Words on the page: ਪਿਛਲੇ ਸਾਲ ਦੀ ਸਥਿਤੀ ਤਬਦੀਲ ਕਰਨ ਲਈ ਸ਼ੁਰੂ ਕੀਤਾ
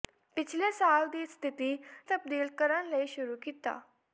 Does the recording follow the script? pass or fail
pass